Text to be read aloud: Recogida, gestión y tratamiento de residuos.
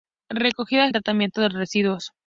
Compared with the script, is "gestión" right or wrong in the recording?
wrong